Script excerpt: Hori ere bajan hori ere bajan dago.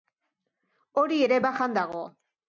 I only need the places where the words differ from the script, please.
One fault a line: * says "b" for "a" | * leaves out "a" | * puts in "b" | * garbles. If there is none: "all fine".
* leaves out "hori ere bajan"